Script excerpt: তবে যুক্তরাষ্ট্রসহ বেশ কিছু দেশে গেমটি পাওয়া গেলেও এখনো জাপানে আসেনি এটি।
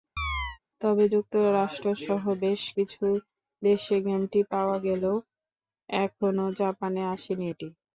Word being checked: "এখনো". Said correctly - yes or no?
yes